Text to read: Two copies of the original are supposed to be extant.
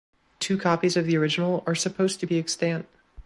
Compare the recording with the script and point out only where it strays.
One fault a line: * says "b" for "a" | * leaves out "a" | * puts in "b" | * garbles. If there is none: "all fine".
all fine